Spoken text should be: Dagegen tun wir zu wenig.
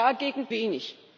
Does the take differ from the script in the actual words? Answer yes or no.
yes